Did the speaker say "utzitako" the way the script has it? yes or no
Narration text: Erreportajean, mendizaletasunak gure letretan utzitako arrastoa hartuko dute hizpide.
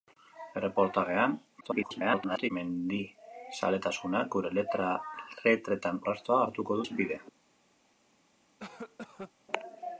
no